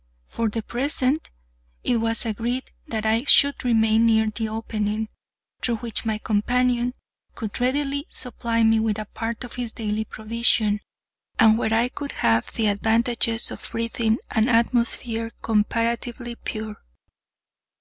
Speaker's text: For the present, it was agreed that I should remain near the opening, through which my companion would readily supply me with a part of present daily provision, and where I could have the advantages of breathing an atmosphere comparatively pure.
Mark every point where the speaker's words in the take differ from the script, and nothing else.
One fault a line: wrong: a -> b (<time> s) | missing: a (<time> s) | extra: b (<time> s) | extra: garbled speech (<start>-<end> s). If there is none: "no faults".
wrong: would -> could (7.3 s)
wrong: present -> his (9.5 s)